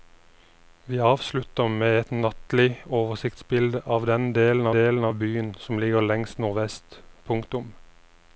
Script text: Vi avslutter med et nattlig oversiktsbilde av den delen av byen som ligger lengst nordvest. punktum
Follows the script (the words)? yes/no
no